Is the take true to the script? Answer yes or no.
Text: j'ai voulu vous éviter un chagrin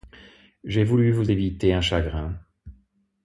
yes